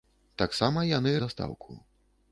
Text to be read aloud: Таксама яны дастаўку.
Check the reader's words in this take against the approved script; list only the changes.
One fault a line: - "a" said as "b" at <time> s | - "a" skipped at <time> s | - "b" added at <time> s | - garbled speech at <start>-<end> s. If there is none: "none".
none